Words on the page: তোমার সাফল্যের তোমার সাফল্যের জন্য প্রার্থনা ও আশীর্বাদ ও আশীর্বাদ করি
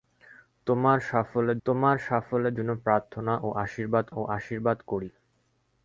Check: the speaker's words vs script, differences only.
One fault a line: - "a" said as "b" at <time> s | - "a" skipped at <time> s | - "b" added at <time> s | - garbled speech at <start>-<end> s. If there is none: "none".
none